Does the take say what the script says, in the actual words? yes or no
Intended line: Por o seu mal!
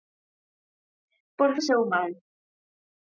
yes